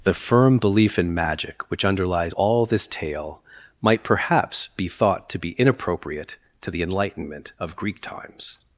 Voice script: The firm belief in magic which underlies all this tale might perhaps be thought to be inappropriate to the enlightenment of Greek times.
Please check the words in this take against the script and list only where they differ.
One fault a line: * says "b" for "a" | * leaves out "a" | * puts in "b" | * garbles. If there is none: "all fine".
all fine